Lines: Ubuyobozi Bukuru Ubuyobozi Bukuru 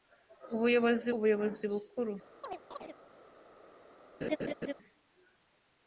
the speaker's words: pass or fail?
fail